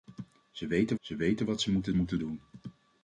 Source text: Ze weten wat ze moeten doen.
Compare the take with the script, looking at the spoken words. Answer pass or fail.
fail